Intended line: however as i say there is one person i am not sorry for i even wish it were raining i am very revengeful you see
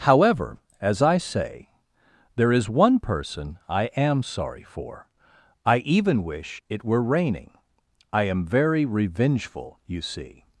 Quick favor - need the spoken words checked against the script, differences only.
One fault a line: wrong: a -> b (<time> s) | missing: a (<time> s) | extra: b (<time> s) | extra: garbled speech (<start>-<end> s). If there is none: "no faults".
missing: not (4.2 s)